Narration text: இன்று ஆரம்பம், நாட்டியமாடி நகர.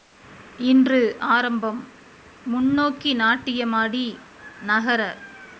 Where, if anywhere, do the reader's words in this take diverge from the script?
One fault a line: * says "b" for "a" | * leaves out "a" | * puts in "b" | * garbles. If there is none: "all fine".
* puts in "முன்னோக்கி"